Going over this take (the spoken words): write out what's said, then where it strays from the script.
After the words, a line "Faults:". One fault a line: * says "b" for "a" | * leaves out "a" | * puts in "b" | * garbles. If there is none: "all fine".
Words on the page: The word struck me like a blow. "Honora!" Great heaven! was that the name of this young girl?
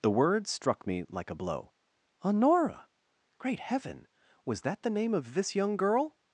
The word struck me like a blow. "Honora!" Great heaven! was that the name of this young girl?
Faults:
all fine